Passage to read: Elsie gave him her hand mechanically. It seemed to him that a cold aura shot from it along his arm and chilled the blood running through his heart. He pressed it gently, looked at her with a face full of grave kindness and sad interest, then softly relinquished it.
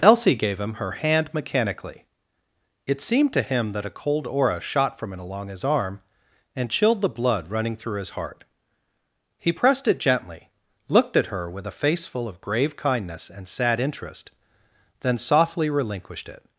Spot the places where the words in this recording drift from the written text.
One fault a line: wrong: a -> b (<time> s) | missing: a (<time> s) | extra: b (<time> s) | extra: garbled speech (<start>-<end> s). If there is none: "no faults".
no faults